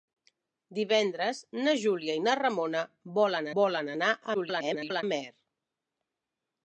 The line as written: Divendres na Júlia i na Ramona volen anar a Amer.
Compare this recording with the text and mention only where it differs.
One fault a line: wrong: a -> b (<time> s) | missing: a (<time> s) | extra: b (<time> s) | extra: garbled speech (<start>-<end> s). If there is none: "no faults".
extra: volen (3.6 s)
extra: garbled speech (4.3-5.0 s)